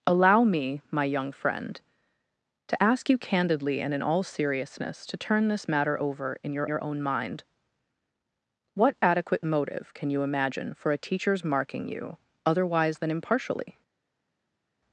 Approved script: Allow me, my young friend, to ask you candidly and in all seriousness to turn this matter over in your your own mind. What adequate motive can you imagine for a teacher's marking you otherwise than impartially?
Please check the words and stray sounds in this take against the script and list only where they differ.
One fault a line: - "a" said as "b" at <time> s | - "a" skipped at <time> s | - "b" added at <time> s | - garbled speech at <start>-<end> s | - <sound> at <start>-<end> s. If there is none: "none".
none